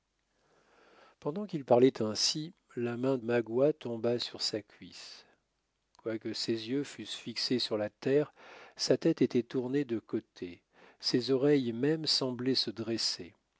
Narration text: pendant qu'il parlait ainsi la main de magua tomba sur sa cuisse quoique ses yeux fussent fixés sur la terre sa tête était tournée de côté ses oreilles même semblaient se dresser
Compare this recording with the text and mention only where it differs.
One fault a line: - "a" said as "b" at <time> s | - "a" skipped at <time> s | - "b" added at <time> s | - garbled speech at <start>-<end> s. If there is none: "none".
- "de" skipped at 3.2 s